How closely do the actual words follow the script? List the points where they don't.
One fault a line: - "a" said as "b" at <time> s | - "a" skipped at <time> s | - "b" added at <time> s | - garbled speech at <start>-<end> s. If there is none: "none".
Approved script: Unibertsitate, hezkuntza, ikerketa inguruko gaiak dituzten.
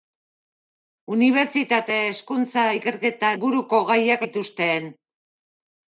none